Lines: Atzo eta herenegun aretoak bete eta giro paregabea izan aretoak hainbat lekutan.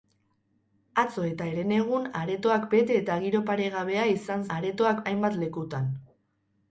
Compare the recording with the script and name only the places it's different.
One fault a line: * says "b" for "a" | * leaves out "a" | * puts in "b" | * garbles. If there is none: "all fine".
all fine